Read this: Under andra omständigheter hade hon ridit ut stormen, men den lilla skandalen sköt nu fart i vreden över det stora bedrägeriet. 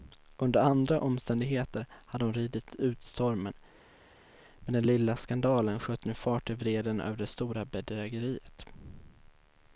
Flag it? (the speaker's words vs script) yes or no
no